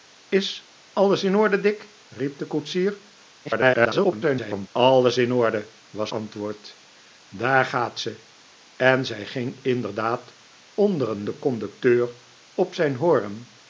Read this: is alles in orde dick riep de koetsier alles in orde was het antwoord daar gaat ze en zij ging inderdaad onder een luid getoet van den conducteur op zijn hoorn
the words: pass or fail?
fail